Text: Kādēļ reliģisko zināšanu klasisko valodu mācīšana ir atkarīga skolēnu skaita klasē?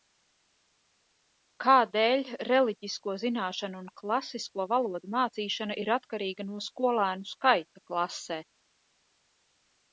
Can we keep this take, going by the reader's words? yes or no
no